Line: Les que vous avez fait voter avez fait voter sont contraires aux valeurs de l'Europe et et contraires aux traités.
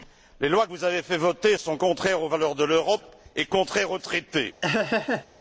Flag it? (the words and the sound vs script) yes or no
yes